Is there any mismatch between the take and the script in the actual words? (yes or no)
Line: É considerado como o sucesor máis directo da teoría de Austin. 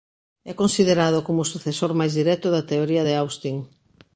no